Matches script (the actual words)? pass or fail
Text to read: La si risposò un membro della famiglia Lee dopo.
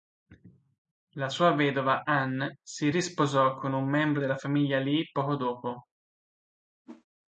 fail